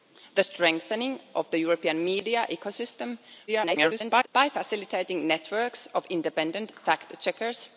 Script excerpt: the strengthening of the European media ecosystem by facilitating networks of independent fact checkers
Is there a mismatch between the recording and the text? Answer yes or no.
yes